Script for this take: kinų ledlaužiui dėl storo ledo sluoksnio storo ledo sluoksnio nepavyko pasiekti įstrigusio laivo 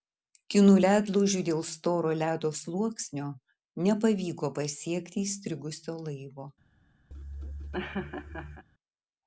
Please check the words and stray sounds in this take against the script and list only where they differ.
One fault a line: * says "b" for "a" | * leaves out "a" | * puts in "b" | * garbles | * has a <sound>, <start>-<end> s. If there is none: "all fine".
* leaves out "storo ledo sluoksnio"
* has a laugh, 7.1-8.6 s